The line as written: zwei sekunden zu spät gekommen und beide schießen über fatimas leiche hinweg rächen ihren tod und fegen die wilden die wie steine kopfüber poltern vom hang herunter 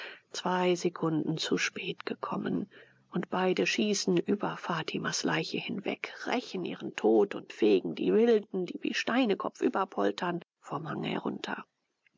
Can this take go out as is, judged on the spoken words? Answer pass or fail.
pass